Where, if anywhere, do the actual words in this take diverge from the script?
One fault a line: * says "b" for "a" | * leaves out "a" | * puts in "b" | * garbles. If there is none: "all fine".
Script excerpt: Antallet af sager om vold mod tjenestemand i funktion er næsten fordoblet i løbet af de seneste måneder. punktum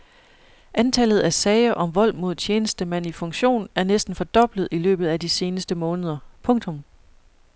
all fine